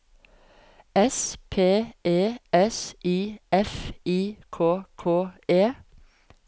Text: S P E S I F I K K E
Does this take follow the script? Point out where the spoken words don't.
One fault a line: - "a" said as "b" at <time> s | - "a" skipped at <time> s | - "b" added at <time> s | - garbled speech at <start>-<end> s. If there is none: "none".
none